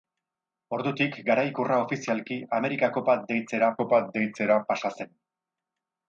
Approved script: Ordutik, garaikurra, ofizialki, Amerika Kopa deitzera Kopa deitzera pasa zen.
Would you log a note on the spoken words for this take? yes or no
no